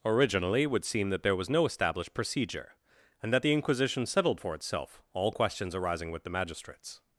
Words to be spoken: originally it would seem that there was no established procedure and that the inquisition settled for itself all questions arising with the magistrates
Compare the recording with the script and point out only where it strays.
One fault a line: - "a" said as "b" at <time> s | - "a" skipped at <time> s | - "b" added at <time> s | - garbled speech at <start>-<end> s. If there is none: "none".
none